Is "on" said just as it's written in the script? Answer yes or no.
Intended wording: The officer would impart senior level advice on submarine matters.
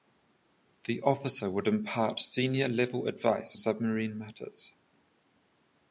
no